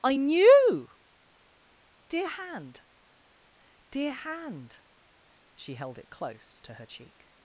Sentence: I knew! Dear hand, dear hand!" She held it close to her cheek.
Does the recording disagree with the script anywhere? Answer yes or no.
no